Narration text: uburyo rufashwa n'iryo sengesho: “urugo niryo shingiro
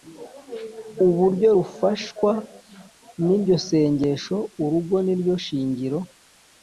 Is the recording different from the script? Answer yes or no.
no